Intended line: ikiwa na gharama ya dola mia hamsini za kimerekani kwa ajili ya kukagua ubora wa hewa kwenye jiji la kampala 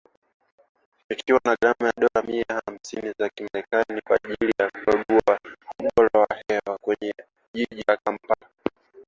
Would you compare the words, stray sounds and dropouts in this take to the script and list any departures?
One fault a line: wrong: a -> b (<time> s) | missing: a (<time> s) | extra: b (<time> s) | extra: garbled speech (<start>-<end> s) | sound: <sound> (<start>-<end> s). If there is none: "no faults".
no faults